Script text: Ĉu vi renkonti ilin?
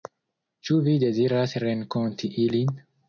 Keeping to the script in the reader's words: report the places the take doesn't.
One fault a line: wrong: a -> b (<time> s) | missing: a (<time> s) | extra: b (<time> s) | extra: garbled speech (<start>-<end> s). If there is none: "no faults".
extra: deziras (1.0 s)